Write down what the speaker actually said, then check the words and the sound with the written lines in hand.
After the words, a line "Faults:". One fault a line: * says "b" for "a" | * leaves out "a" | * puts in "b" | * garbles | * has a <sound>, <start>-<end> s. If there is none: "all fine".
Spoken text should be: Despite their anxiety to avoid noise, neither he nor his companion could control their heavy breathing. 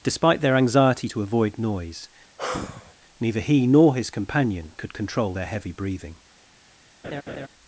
Despite their anxiety to avoid noise, neither he nor his companion could control their heavy breathing.
Faults:
* has a sigh, 2.4-3.0 s
* has a laugh, 7.0-7.5 s